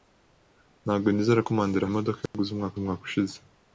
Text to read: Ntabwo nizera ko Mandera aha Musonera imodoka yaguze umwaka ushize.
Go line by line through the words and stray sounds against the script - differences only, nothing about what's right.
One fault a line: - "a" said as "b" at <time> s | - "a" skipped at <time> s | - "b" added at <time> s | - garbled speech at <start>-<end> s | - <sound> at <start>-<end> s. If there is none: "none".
- "aha Musonera" skipped at 1.9 s
- dropout at 2.3-2.3 s
- "umwaka" added at 2.8 s